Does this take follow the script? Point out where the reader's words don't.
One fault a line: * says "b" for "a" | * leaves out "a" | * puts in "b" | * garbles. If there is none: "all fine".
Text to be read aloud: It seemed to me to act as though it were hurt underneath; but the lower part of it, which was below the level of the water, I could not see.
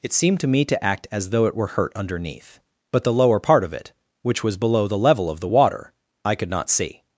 all fine